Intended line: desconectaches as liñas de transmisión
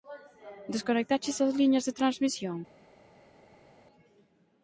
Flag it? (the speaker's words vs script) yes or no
no